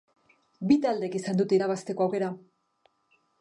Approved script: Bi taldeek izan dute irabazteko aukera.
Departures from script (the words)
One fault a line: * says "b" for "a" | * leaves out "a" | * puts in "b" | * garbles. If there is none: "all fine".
all fine